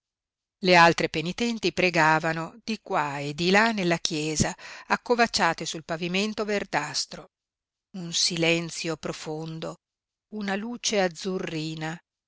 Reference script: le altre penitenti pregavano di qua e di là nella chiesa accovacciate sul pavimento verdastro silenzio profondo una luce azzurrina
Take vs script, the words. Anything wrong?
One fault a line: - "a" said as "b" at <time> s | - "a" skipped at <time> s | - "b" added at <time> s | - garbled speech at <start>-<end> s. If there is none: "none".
- "un" added at 8.0 s